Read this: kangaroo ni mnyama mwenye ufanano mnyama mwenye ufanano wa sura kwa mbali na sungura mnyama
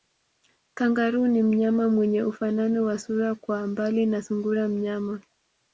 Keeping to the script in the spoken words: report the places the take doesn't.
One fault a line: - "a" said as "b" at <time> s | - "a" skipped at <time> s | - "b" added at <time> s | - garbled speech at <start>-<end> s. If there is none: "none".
- "mnyama mwenye ufanano" skipped at 2.9 s